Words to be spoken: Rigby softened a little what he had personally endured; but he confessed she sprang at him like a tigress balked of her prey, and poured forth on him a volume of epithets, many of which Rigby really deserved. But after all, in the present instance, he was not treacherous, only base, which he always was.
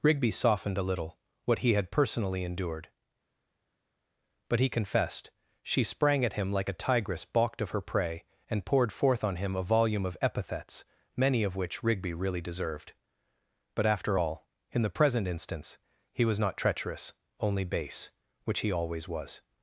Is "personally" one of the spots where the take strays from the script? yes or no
no